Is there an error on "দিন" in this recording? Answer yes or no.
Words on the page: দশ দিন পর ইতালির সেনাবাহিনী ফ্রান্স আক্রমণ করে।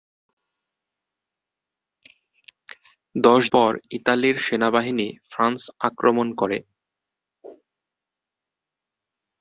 yes